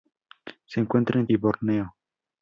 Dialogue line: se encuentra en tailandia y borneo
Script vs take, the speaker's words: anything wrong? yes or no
yes